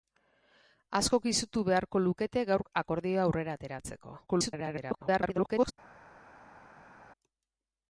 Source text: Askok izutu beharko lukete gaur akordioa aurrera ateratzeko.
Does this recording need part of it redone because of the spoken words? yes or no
yes